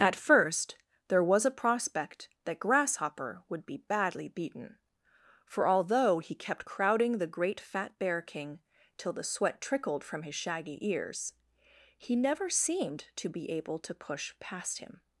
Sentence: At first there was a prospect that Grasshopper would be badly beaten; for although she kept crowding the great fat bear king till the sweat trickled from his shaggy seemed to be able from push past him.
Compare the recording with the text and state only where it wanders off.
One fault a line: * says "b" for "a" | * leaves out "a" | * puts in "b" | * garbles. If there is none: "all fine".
* says "he" for "she"
* puts in "ears he never"
* says "to" for "from"